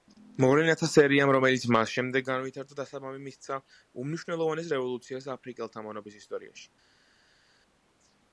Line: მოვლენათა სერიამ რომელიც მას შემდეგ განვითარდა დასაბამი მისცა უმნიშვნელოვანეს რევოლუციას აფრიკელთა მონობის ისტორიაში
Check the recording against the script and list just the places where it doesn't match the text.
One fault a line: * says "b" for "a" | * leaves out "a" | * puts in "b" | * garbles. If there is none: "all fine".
all fine